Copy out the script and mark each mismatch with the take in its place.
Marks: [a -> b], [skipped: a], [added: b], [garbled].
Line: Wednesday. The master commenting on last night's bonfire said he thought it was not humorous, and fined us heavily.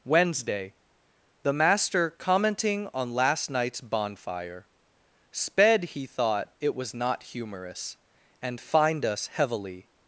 Wednesday. The master commenting on last night's bonfire [said -> sped] he thought it was not humorous, and fined us heavily.